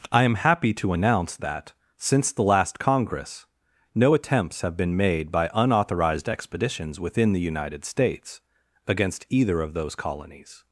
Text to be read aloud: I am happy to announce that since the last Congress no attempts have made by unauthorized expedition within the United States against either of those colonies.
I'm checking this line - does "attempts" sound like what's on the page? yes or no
yes